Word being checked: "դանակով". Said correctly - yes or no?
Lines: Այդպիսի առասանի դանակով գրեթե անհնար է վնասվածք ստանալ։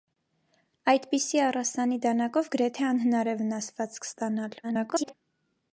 yes